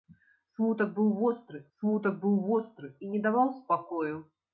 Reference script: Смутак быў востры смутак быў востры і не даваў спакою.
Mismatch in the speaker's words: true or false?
false